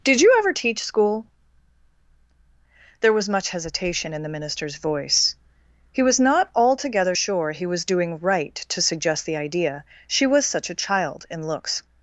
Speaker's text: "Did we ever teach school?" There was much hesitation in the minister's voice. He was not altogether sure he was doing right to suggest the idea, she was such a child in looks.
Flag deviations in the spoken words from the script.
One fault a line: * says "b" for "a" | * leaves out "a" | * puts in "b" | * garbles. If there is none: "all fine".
* says "you" for "we"